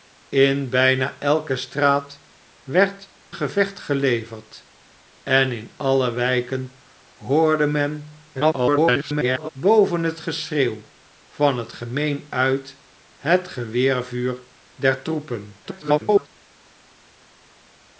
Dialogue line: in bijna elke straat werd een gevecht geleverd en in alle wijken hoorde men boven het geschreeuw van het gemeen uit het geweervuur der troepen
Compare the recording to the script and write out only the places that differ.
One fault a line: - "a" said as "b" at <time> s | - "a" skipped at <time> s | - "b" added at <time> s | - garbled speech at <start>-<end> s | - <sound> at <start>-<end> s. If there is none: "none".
- "een" skipped at 3.1 s
- garbled speech at 8.3-9.5 s
- garbled speech at 15.6-16.3 s